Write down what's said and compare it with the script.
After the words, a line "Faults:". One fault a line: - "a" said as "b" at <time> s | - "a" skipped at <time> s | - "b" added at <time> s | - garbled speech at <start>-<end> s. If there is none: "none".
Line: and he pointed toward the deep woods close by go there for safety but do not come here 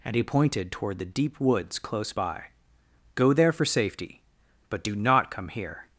and he pointed toward the deep woods close by go there for safety but do not come here
Faults:
none